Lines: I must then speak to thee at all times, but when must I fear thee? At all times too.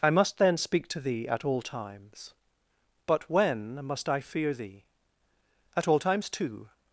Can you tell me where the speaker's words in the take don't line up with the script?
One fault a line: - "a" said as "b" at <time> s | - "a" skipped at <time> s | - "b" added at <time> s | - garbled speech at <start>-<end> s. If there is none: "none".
none